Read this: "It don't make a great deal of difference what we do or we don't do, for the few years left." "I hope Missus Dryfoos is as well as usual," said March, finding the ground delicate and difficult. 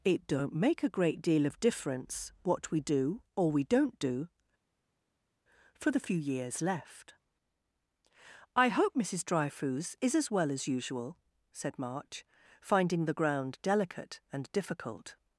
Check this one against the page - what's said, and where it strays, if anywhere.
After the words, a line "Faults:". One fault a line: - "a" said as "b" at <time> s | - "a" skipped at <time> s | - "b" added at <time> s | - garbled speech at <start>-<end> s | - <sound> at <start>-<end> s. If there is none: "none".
"It don't make a great deal of difference what we do or we don't do, for the few years left." "I hope Missus Dryfoos is as well as usual," said March, finding the ground delicate and difficult.
Faults:
none